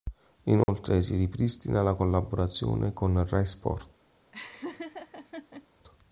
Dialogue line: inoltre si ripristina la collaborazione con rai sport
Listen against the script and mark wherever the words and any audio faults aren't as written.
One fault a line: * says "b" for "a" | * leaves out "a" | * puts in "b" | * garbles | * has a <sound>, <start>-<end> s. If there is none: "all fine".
* has a dropout, 0.6-0.7 s
* has a laugh, 4.3-5.7 s